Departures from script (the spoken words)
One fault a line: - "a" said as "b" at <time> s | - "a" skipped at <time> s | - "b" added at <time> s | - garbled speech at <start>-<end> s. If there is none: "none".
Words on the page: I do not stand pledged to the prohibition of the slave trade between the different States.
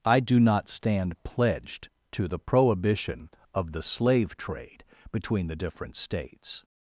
none